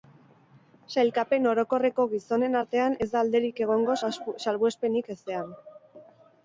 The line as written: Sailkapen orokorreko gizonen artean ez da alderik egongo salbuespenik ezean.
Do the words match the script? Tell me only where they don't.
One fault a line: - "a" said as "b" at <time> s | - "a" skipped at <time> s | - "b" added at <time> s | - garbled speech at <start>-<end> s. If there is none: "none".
none